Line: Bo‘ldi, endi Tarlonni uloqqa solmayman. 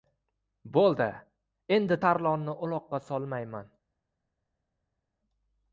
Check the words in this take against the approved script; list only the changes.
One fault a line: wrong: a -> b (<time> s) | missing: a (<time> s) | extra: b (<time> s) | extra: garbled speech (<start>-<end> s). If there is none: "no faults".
no faults